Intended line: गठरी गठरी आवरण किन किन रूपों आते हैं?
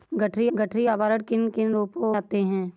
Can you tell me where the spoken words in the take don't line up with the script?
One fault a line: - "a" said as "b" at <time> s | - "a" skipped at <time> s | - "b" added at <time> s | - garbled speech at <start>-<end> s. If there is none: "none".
none